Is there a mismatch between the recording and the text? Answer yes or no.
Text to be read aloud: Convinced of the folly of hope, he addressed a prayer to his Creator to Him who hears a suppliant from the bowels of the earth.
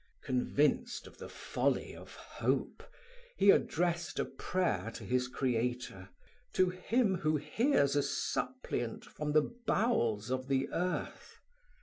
no